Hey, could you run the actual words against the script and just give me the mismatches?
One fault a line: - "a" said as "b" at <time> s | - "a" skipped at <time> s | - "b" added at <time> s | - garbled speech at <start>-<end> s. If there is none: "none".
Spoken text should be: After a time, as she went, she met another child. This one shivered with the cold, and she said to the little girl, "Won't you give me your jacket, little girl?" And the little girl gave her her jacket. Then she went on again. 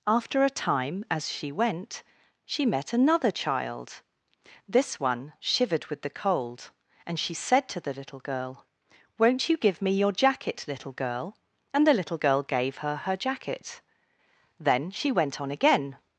none